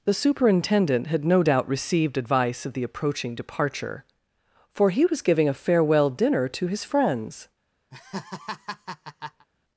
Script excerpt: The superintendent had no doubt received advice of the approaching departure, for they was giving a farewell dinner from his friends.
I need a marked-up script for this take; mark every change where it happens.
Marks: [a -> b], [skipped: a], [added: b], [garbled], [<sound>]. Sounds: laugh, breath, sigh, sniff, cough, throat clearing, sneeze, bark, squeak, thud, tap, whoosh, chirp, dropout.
The superintendent had no doubt received advice of the approaching departure, for [they -> he] was giving a farewell dinner [from -> to] his friends. [laugh]